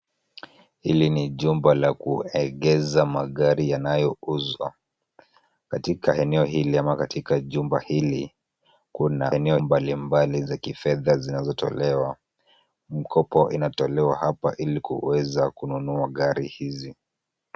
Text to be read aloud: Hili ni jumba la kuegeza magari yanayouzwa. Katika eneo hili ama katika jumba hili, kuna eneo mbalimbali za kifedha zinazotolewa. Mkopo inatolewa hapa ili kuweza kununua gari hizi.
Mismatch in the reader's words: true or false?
false